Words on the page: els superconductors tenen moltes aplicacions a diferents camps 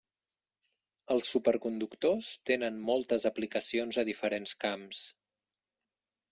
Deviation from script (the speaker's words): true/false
false